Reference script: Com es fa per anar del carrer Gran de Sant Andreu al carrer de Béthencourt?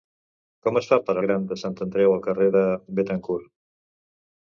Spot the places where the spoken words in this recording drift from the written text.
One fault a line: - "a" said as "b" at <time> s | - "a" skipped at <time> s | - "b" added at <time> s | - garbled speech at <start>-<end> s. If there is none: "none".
- "anar del carrer" skipped at 1.1 s